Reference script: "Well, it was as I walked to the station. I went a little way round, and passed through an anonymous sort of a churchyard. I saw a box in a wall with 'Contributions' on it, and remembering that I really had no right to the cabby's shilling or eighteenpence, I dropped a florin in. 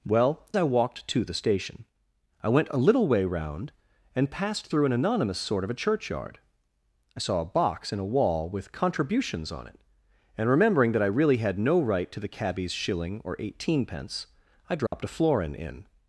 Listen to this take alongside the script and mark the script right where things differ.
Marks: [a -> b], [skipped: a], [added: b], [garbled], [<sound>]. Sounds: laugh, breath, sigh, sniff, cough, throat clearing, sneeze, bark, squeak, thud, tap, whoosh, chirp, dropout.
"Well, it [skipped: was as] I walked to the station. I went a little way round, and passed through an anonymous sort of a churchyard. I saw a box in a wall with 'Contributions' on it, and remembering that I really had no right to the cabby's shilling or eighteenpence, I dropped [dropout] a florin in.